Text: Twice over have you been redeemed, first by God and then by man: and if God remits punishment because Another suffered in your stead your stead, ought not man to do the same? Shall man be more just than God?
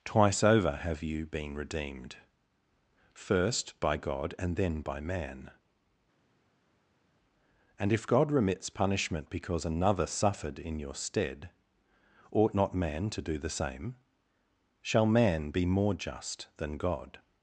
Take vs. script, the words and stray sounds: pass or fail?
fail